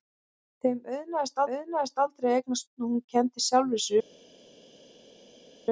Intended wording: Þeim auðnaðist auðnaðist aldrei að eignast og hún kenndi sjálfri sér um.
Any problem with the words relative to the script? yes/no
no